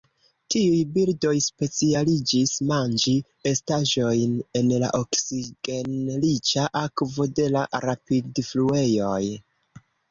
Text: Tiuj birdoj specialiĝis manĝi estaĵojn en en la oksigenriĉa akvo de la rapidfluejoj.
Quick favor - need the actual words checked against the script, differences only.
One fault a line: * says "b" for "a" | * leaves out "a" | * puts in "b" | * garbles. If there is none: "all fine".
* leaves out "en"